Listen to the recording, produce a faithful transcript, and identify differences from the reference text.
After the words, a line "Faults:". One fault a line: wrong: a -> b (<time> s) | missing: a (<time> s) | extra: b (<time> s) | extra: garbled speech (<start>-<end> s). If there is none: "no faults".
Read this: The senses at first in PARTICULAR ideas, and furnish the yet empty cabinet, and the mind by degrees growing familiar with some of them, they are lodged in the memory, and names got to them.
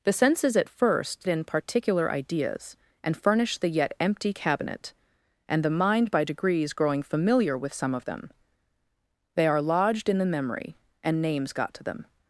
The senses at first in PARTICULAR ideas, and furnish the yet empty cabinet, and the mind by degrees growing familiar with some of them, they are lodged in the memory, and names got to them.
Faults:
no faults